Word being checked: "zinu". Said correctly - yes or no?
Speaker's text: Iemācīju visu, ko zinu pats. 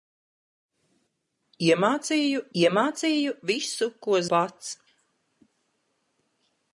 no